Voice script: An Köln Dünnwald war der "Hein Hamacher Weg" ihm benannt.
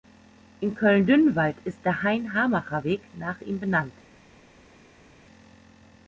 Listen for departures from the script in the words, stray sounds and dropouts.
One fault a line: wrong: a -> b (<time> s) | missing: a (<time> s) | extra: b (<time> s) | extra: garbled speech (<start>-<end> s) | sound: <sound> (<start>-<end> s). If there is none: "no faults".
wrong: An -> In (0.6 s)
wrong: war -> ist (1.7 s)
extra: nach (3.2 s)